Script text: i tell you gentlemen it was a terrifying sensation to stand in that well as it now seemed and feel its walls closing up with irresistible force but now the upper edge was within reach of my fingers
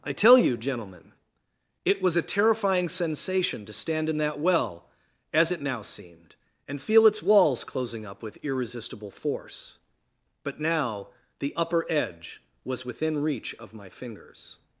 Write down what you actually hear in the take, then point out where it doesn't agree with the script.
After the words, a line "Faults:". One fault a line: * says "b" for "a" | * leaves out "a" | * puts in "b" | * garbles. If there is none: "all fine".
i tell you gentlemen it was a terrifying sensation to stand in that well as it now seemed and feel its walls closing up with irresistible force but now the upper edge was within reach of my fingers
Faults:
all fine